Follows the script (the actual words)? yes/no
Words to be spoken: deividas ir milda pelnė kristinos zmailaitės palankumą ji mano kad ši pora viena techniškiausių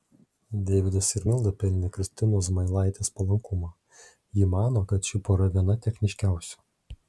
yes